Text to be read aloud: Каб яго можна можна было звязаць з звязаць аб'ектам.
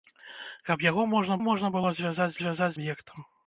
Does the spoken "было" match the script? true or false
true